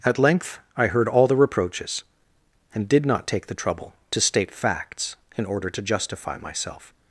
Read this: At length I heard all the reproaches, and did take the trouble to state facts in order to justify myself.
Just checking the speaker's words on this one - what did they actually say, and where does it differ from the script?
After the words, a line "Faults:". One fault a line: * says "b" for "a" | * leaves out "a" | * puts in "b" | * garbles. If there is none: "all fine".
At length I heard all the reproaches, and did not take the trouble to state facts in order to justify myself.
Faults:
* puts in "not"